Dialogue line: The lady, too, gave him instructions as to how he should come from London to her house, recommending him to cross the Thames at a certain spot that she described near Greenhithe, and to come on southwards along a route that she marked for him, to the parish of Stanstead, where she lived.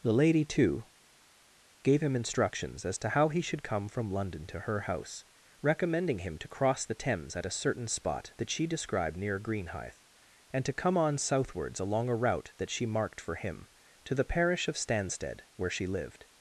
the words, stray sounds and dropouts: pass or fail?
pass